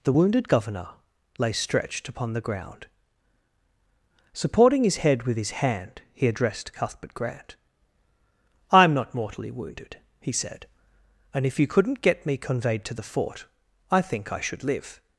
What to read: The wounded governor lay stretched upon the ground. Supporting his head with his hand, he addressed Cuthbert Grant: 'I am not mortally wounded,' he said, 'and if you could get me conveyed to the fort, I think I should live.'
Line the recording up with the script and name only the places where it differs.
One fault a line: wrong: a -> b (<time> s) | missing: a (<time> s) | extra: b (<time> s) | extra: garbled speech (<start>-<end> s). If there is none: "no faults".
wrong: could -> couldn't (11.7 s)